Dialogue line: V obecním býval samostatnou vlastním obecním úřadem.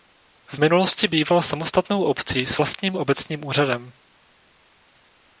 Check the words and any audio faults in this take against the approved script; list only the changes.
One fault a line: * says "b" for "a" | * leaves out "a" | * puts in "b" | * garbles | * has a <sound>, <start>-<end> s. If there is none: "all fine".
* says "minulosti" for "obecním"
* puts in "obcí s"